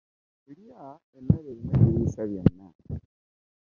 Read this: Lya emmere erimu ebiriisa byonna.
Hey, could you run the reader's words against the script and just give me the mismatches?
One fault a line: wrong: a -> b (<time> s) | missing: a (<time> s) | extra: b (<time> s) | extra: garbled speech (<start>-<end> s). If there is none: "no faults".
no faults